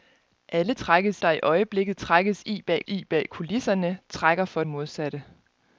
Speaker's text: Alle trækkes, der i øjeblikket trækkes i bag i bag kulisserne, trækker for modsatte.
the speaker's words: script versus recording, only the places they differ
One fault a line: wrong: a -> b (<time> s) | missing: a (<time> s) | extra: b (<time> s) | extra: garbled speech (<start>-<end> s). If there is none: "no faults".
no faults